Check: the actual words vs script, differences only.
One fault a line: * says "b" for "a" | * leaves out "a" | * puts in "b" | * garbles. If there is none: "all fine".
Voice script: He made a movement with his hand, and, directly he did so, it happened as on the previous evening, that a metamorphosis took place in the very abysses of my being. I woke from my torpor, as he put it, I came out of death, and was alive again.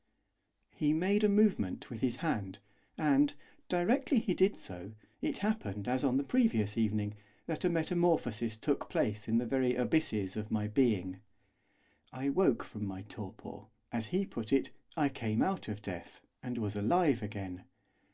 all fine